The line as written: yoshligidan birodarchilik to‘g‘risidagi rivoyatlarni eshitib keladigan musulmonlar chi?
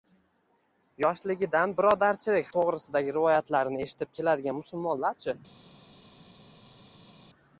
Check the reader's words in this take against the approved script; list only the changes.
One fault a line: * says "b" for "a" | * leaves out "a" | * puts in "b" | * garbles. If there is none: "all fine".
all fine